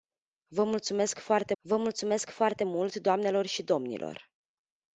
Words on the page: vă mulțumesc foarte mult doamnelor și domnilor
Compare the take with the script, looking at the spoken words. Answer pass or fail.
fail